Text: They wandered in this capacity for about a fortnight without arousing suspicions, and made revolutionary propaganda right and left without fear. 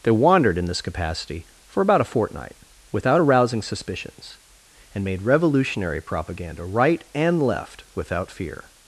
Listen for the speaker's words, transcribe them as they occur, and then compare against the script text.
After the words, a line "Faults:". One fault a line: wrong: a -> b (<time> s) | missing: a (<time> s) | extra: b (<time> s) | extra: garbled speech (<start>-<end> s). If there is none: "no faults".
They wandered in this capacity for about a fortnight without arousing suspicions, and made revolutionary propaganda right and left without fear.
Faults:
no faults